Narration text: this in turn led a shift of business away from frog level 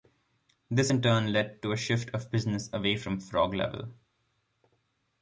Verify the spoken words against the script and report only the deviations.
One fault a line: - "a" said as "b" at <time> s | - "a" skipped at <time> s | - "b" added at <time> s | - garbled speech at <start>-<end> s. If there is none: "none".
- "to" added at 1.6 s